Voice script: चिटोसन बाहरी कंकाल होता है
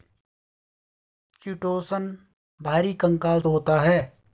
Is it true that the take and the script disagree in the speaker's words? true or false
false